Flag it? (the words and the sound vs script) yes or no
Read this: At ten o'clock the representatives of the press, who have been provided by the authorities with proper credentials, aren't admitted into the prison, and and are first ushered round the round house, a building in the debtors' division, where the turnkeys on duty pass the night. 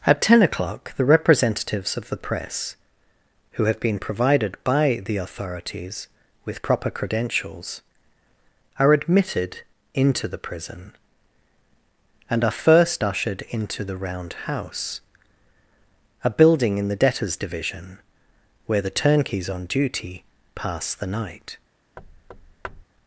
yes